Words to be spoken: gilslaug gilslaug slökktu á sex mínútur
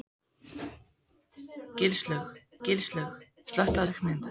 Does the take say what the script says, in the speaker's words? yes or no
yes